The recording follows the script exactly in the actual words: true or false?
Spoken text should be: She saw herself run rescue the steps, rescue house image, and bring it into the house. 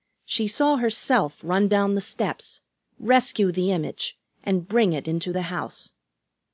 false